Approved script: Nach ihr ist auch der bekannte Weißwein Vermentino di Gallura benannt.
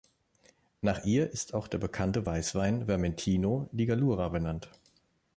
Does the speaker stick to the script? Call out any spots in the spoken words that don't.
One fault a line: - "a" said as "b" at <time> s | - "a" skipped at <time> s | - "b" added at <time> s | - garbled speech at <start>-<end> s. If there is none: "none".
none